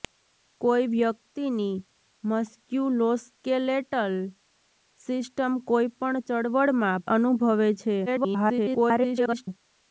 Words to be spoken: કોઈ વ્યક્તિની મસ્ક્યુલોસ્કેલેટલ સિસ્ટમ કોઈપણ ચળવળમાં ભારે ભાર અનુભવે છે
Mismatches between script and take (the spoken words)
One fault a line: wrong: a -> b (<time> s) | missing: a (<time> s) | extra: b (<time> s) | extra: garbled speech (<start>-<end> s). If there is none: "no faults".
missing: ભારે ભાર (7.1 s)
extra: garbled speech (8.1-9.5 s)